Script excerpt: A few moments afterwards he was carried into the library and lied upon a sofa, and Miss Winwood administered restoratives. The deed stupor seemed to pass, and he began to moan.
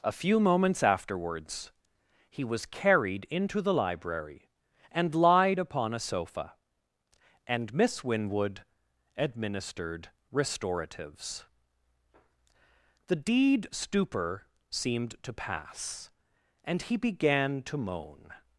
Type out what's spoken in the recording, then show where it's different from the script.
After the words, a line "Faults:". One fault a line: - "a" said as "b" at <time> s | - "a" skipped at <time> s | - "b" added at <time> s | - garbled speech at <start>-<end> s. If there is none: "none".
A few moments afterwards he was carried into the library and lied upon a sofa, and Miss Winwood administered restoratives. The deed stupor seemed to pass, and he began to moan.
Faults:
none